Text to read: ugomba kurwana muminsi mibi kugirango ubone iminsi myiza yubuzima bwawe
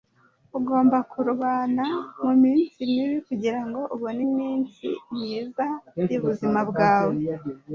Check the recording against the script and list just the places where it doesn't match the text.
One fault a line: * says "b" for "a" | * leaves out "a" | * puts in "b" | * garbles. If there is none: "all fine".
all fine